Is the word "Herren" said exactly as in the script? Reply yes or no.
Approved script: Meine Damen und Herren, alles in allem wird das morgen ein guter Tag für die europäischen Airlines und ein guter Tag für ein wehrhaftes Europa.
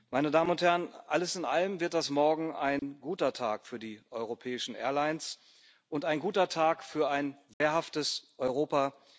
yes